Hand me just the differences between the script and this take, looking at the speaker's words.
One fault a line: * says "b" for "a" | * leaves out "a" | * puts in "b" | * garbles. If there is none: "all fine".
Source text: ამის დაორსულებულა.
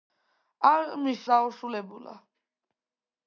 all fine